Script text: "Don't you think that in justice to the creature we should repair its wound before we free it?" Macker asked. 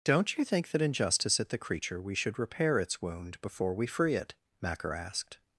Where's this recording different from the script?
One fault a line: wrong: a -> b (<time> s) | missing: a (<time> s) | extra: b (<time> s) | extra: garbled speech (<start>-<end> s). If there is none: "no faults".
wrong: to -> at (1.4 s)